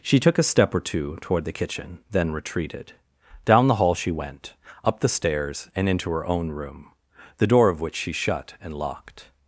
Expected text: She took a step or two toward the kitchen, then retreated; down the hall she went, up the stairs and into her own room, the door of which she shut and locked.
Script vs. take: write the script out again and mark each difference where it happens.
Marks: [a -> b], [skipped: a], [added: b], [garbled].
She took a step or two toward the kitchen, then retreated; down the hall she went, up the stairs and into her own room, the door of which she shut and locked.